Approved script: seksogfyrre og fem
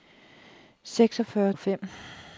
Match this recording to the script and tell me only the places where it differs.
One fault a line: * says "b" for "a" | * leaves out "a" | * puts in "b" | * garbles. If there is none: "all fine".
all fine